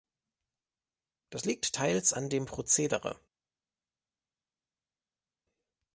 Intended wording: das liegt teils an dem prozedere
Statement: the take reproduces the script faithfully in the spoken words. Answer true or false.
true